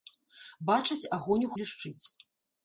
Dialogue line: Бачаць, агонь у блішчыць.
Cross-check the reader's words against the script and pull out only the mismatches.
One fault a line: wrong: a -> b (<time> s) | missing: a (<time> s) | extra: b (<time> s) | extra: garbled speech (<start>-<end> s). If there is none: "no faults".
no faults